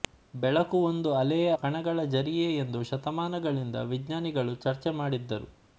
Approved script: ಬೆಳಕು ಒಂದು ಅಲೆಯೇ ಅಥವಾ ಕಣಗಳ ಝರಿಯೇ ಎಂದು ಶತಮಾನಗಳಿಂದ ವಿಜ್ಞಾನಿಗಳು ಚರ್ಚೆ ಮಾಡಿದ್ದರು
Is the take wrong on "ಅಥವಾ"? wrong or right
wrong